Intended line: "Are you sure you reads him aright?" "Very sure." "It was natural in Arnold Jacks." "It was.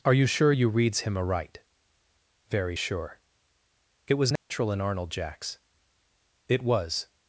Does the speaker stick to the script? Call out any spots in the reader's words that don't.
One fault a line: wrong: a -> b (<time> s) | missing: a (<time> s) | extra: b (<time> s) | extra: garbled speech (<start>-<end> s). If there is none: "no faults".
no faults